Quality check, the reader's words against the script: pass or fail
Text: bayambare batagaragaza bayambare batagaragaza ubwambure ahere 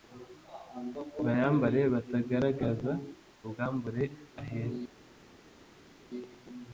fail